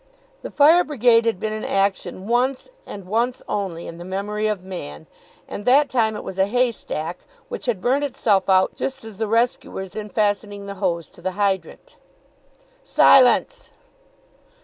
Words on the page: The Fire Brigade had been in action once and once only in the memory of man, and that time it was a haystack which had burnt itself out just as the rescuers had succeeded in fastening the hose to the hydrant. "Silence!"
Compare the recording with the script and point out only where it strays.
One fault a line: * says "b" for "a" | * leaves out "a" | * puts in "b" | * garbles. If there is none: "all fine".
* leaves out "had succeeded"